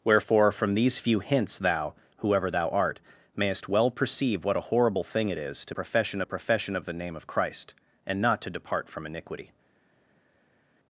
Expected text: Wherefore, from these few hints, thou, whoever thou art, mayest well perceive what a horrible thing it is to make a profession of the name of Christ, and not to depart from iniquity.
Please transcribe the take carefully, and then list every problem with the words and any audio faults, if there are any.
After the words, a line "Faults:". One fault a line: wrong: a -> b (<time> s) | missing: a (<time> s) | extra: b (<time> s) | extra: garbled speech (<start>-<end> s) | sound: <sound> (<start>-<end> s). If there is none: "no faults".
Wherefore, from these few hints, thou, whoever thou art, mayest well perceive what a horrible thing it is to profession a profession of the name of Christ, and not to depart from iniquity.
Faults:
wrong: make -> profession (5.7 s)